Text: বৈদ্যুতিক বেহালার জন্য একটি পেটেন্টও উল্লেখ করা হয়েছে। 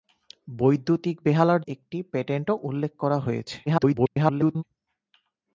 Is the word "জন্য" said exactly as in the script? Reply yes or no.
no